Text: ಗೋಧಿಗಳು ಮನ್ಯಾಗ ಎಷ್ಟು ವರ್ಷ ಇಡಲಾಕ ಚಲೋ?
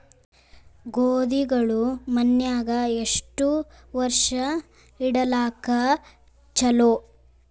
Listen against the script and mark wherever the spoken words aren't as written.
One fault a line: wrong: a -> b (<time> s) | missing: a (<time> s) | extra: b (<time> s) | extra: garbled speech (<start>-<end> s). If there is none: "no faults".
no faults